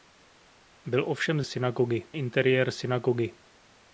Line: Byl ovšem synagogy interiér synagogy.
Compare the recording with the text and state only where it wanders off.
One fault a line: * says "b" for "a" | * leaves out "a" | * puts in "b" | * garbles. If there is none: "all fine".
all fine